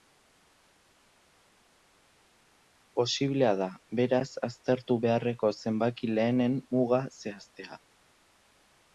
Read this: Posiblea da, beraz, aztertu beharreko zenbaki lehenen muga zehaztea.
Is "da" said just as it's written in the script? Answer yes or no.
yes